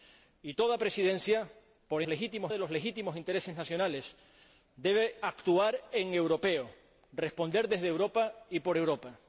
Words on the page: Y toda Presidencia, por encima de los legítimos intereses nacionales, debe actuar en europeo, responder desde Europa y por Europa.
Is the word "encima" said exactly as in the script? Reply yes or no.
no